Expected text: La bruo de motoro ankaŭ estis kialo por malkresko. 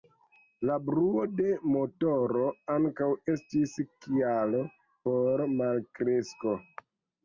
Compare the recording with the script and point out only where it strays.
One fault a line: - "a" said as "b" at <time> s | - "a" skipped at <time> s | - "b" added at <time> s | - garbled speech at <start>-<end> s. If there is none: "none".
none